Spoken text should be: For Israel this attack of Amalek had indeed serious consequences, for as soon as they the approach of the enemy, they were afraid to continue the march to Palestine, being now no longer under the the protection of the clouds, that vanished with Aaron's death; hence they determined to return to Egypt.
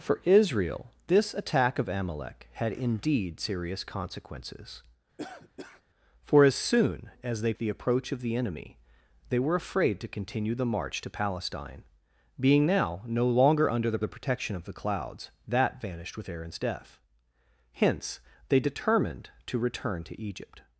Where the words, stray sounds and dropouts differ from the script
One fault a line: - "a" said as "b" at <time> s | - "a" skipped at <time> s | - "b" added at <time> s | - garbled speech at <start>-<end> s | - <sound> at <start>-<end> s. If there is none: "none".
- cough at 5.2-5.8 s